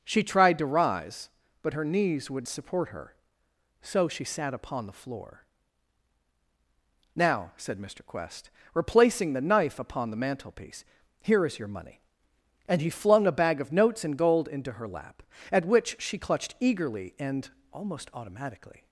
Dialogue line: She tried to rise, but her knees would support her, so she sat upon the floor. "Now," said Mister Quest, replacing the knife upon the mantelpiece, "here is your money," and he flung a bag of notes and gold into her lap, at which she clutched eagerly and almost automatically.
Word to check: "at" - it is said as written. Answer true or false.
true